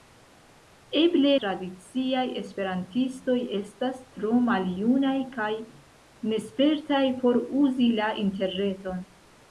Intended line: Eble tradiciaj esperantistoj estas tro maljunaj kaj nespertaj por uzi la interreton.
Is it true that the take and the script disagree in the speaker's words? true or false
false